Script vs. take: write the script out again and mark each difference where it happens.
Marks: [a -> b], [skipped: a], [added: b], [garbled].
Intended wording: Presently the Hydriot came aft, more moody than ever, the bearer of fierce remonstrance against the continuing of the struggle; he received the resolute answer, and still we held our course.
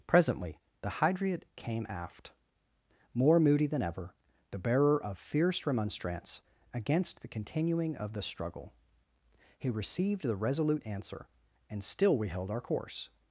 Presently the Hydriot came aft, more moody than ever, the bearer of fierce remonstrance against the continuing of the struggle; he received the resolute answer, and still we held our course.